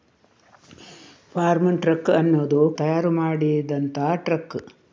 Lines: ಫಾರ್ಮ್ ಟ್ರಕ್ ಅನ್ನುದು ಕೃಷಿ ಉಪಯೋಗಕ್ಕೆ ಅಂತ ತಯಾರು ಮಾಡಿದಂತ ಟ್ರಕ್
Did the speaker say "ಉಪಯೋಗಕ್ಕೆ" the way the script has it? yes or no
no